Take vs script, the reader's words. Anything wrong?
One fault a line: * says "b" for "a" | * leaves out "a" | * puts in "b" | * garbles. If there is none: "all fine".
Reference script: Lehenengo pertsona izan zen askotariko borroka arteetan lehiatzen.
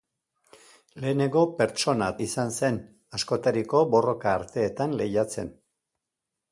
all fine